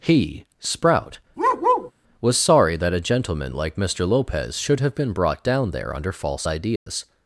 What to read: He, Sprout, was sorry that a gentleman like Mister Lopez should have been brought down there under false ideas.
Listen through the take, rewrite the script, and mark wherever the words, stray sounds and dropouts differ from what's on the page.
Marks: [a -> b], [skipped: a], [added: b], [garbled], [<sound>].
He, Sprout, [bark] was sorry that a gentleman like Mister Lopez should have been brought down there under false ideas. [dropout]